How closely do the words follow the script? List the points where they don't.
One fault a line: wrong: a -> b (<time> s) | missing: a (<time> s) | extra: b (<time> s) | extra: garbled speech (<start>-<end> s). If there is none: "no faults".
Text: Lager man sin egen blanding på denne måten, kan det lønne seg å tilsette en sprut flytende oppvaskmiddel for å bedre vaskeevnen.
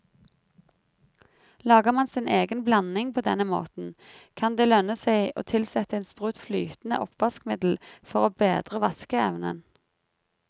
no faults